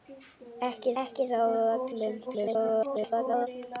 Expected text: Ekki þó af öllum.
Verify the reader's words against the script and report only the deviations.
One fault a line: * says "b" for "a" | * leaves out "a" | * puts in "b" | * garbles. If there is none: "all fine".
* puts in "ekki"
* garbles